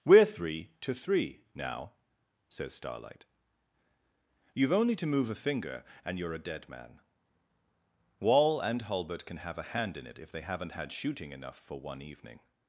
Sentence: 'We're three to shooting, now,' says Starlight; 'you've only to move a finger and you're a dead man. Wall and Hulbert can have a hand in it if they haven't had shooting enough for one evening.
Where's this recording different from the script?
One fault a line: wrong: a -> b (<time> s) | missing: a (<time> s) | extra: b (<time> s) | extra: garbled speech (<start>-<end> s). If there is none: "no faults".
wrong: shooting -> three (0.9 s)